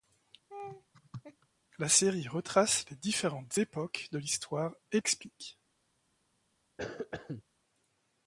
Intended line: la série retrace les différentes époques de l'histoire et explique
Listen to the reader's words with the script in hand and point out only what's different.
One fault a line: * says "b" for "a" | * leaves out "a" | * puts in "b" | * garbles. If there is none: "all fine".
all fine